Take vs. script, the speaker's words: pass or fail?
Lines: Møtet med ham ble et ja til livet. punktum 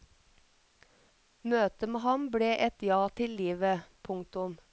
pass